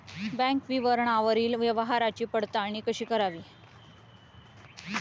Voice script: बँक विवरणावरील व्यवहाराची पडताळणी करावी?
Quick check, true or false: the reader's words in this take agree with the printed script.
false